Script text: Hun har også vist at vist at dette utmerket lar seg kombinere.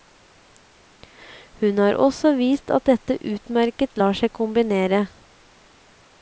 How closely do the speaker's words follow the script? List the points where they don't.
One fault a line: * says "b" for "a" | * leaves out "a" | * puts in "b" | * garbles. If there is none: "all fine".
* leaves out "vist at"